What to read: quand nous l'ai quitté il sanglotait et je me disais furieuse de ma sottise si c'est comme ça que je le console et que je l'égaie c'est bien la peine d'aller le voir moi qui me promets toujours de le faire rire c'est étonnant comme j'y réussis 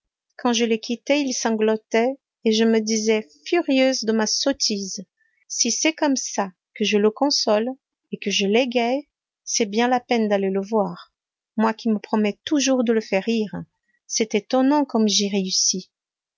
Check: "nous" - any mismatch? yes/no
yes